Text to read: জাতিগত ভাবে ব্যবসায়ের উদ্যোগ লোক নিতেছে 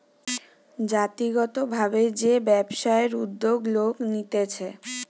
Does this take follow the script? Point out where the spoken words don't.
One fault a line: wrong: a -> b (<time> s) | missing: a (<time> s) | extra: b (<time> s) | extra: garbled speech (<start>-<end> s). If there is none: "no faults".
extra: যে (2.2 s)